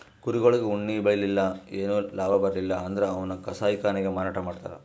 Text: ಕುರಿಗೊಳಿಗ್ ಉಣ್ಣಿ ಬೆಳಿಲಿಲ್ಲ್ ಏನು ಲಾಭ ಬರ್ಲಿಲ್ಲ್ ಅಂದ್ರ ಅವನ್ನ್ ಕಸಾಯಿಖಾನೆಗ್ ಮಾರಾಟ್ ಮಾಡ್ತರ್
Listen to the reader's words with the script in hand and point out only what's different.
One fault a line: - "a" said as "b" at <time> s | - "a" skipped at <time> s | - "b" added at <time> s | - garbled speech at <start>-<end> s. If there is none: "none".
none